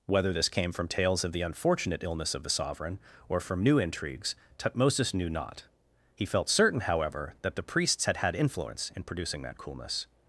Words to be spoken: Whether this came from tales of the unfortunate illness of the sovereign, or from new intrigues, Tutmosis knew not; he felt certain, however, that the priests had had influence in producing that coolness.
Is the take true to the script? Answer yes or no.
yes